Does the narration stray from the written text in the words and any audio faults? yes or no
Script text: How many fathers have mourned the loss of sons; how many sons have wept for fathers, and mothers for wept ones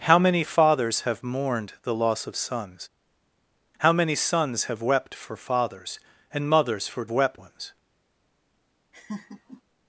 yes